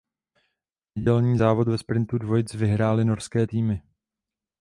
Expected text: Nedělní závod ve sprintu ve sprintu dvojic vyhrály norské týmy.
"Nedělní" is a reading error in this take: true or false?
false